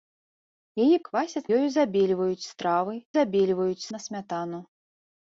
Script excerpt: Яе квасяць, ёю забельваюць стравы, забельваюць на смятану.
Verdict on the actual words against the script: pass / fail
pass